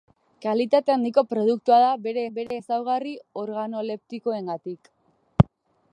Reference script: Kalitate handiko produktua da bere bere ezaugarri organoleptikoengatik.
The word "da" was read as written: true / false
true